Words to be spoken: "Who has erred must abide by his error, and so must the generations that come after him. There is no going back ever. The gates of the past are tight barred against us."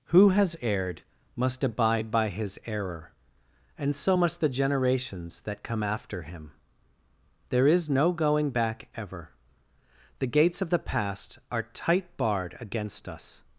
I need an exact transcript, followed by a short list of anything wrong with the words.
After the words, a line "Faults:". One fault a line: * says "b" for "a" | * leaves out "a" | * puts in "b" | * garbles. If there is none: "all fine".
"Who has erred must abide by his error, and so must the generations that come after him. There is no going back ever. The gates of the past are tight barred against us."
Faults:
all fine